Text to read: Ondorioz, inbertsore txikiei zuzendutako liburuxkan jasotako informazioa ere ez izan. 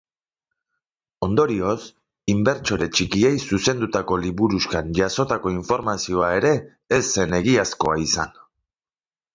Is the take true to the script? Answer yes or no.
no